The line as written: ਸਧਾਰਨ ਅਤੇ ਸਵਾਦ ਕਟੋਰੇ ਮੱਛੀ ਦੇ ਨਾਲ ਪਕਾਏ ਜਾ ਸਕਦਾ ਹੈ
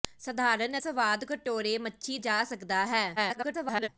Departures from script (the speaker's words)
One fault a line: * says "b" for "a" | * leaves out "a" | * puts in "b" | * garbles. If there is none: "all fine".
* leaves out "ਅਤੇ"
* leaves out "ਦੇ ਨਾਲ ਪਕਾਏ"
* garbles